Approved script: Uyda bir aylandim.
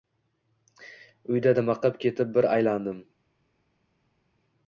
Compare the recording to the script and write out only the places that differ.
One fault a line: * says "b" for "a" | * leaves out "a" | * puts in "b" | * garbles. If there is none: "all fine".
* puts in "dimiqib ketib"